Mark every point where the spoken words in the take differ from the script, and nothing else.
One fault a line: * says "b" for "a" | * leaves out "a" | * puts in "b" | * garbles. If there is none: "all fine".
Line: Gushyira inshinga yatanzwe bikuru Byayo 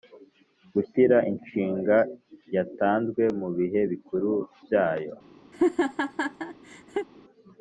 * puts in "mu bihe"